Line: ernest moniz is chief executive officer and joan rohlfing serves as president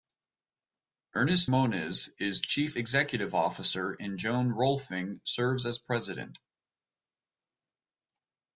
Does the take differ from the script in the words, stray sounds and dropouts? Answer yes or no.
no